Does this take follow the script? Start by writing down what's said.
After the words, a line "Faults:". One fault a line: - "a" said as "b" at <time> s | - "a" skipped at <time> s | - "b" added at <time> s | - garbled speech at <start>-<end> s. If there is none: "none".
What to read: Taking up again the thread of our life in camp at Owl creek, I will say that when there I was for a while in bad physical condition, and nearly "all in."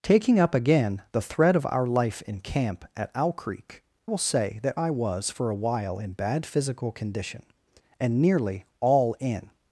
Taking up again the thread of our life in camp at Owl creek, will say that I was for a while in bad physical condition, and nearly "all in."
Faults:
- "I" skipped at 3.8 s
- "when there" skipped at 4.8 s